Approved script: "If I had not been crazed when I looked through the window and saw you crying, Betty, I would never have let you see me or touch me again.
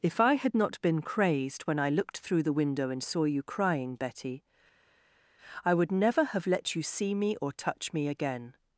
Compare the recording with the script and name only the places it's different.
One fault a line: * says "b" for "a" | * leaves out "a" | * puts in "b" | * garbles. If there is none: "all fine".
all fine